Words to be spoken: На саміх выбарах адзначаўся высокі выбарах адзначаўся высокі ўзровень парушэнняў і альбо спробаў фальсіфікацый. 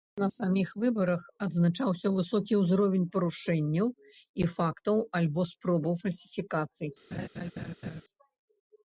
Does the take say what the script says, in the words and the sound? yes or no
no